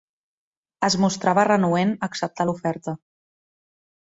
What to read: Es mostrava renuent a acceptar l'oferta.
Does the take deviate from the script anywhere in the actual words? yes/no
no